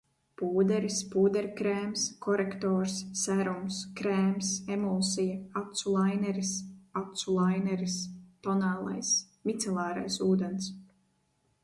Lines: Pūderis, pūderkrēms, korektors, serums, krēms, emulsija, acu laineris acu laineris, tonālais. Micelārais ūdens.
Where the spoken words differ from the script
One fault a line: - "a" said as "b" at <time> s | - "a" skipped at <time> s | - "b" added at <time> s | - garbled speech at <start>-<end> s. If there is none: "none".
none